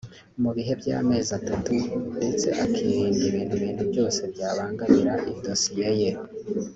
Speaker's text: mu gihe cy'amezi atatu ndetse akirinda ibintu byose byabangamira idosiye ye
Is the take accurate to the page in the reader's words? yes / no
no